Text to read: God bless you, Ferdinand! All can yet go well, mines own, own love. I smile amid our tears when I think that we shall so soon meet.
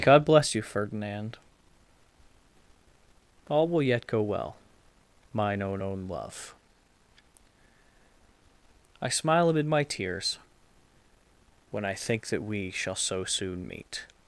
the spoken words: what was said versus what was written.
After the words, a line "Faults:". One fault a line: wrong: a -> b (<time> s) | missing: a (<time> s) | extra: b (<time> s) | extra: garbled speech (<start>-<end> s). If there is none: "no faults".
God bless you, Ferdinand! All will yet go well, mine own, own love. I smile amid my tears when I think that we shall so soon meet.
Faults:
wrong: can -> will (3.7 s)
wrong: mines -> mine (5.3 s)
wrong: our -> my (9.7 s)